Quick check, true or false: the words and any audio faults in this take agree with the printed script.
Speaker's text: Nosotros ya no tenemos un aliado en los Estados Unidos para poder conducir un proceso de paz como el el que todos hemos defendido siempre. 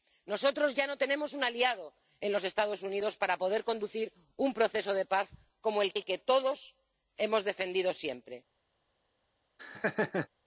false